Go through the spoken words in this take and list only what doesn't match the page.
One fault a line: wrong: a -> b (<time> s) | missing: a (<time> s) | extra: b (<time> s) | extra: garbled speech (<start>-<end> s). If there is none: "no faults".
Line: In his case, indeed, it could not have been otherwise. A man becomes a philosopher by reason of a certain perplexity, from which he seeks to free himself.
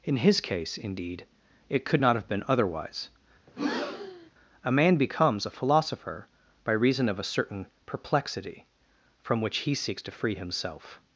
no faults